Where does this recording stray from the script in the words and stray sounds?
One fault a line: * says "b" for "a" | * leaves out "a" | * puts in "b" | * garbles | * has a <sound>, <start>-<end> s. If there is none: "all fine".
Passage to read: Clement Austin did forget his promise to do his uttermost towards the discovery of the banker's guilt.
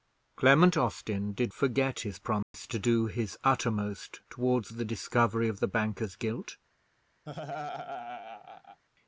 * has a dropout, 2.4-2.5 s
* has a laugh, 7.3-8.8 s